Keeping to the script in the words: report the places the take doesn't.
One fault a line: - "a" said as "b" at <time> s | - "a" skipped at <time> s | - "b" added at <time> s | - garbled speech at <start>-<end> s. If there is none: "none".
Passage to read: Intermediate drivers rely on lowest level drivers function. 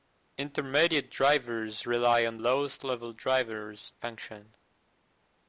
none